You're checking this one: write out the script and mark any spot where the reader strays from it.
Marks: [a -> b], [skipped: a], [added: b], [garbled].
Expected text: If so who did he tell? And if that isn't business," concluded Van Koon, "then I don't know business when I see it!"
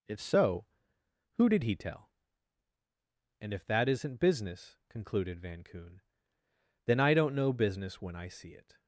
If so who did he tell? And if that isn't business," concluded Van Koon, "then I don't know business when I see it!"